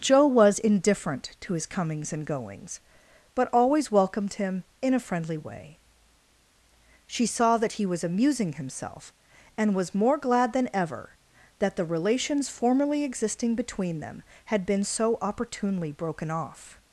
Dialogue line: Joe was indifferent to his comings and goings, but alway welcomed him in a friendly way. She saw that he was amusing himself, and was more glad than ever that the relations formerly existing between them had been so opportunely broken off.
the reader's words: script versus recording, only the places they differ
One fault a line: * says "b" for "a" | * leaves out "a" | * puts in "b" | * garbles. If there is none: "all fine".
* says "always" for "alway"